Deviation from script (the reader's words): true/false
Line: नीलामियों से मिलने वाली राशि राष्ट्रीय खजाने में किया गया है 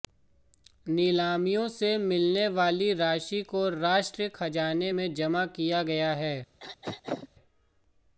true